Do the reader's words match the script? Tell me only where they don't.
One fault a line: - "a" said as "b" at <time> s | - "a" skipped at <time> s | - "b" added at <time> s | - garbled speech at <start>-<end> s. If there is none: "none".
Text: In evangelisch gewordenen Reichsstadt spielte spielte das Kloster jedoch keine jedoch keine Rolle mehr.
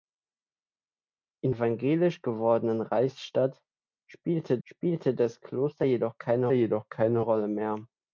none